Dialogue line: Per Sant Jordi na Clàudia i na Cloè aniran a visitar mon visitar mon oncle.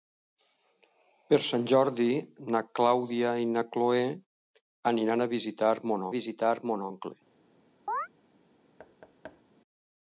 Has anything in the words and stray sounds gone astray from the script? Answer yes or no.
yes